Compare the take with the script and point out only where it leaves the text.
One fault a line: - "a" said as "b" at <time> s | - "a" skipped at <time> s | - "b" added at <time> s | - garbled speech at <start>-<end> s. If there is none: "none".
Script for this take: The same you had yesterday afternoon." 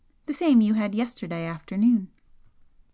none